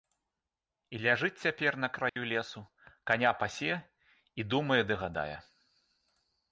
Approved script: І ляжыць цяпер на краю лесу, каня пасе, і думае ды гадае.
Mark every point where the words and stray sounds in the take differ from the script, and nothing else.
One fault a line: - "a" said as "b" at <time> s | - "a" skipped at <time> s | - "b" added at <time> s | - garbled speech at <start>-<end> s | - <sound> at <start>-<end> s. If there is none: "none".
- dropout at 2.1-2.2 s